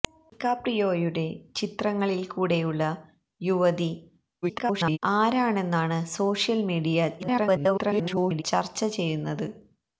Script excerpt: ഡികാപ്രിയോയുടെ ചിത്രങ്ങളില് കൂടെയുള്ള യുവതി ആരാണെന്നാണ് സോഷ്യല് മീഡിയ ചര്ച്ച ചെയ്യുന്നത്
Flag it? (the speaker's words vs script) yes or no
yes